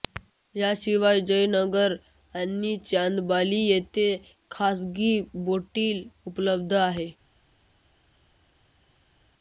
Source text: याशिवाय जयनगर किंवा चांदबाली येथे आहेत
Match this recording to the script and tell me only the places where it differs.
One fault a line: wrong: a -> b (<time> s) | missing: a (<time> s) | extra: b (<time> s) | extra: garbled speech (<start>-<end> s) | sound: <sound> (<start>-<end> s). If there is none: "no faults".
wrong: किंवा -> आणि (2.4 s)
extra: खासगी बोटीही उपलब्ध (4.5 s)